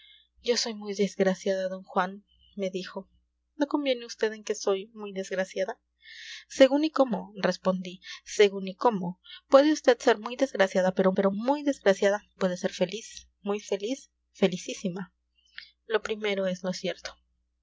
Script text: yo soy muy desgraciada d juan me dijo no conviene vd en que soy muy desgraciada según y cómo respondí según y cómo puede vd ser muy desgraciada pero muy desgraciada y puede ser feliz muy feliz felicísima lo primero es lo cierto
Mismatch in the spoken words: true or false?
true